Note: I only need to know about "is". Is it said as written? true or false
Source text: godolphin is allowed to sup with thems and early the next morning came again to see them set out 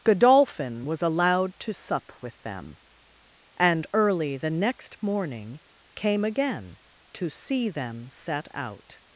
false